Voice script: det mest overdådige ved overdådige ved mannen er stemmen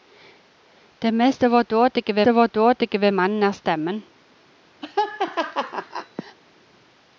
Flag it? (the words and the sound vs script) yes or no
yes